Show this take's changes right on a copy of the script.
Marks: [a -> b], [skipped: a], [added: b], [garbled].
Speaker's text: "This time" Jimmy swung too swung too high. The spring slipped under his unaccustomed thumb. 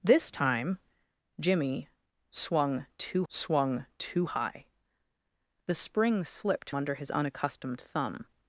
"This time" Jimmy swung too swung too high. The spring slipped under his unaccustomed thumb.